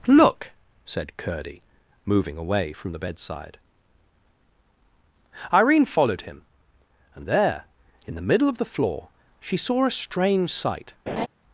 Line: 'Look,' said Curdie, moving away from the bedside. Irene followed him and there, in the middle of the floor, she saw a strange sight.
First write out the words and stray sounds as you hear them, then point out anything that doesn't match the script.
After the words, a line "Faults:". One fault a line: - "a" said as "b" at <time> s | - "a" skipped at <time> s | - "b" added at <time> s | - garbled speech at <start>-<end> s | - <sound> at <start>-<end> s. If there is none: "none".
'Look,' said Curdie, moving away from the bedside. Irene followed him and there, in the middle of the floor, she saw a strange sight.
Faults:
- laugh at 11.1-11.3 s